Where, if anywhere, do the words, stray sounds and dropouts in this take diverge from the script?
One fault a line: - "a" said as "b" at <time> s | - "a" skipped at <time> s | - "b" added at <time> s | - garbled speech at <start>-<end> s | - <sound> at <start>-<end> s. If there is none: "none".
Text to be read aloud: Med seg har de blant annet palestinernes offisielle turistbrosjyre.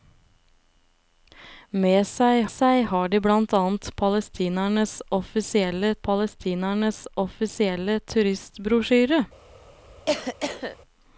- "seg" added at 2.5 s
- "palestinernes offisielle" added at 6.1 s
- cough at 10.1-10.8 s